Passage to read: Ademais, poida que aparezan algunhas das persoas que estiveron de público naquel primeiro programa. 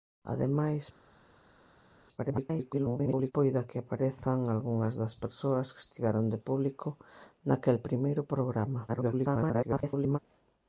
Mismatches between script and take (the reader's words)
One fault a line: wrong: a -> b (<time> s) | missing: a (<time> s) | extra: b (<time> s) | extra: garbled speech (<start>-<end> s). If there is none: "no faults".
extra: garbled speech (2.2-3.3 s)
extra: garbled speech (8.9-10.2 s)